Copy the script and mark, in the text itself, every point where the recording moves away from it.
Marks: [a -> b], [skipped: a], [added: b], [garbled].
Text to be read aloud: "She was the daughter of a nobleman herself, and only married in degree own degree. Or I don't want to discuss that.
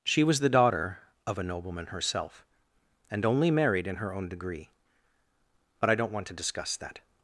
"She was the daughter of a nobleman herself, and only married in [degree -> her] own degree. [Or -> But] I don't want to discuss that.